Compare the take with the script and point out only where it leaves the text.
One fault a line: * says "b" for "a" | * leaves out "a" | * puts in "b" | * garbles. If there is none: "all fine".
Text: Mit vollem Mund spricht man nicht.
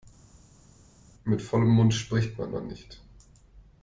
* puts in "man"